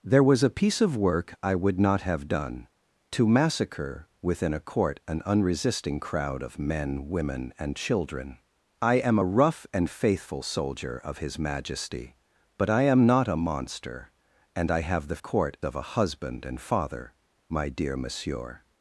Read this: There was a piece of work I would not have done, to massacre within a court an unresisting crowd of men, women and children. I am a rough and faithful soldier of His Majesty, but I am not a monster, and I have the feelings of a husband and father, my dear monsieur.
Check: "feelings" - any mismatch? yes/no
yes